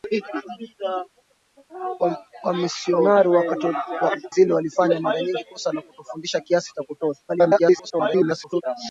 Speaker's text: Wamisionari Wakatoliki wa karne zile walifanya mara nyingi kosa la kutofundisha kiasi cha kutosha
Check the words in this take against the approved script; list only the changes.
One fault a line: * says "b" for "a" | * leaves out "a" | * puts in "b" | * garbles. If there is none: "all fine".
* leaves out "Wakatoliki wa karne"
* garbles